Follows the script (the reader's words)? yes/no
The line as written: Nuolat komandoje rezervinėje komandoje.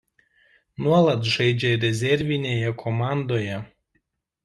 no